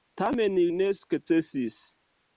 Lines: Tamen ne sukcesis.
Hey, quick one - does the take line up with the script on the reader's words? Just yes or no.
yes